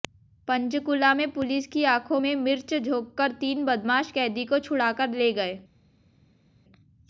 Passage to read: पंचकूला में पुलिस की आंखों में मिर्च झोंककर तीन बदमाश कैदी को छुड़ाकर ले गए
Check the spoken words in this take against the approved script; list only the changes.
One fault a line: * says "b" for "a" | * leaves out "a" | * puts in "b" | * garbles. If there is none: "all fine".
all fine